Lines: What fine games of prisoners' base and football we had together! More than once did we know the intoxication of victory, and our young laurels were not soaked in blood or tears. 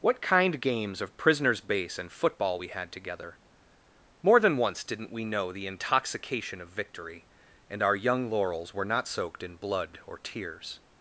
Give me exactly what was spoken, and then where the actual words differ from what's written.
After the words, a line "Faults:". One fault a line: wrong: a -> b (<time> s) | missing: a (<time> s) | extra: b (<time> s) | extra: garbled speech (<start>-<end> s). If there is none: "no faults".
What kind games of prisoners' base and football we had together! More than once didn't we know the intoxication of victory, and our young laurels were not soaked in blood or tears.
Faults:
wrong: fine -> kind (0.2 s)
wrong: did -> didn't (4.9 s)